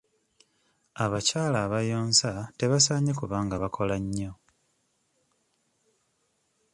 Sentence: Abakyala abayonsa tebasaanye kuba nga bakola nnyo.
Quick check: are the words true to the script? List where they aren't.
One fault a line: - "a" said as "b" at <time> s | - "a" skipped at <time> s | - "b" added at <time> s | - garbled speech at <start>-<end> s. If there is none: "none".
none